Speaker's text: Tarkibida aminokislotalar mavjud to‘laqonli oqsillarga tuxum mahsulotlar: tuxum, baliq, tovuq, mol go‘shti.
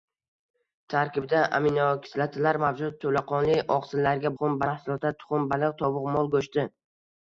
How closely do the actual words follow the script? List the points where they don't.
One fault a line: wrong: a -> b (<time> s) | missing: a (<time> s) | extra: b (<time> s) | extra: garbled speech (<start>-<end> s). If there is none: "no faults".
no faults